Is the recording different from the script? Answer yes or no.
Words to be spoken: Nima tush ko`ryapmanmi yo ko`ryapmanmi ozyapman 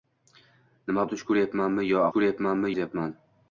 no